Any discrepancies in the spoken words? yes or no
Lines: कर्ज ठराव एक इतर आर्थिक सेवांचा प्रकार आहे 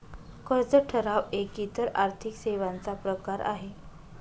no